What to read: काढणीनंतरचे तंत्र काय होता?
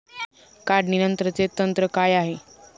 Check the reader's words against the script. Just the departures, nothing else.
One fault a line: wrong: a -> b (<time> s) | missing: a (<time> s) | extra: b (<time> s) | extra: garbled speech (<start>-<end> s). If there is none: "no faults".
wrong: होता -> आहे (2.1 s)